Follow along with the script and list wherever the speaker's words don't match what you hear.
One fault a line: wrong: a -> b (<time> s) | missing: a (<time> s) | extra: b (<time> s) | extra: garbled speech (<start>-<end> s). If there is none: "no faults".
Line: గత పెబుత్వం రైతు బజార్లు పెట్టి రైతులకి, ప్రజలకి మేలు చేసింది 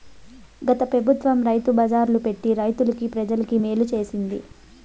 no faults